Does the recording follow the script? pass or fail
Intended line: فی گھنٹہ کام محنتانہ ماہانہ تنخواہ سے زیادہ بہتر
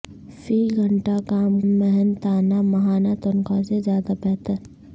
pass